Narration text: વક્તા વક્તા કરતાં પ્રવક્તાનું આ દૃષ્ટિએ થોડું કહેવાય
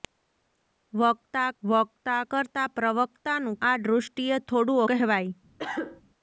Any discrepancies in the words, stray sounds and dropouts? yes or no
yes